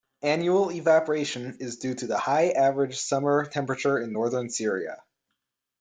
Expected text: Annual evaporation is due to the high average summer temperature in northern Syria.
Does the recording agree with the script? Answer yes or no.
yes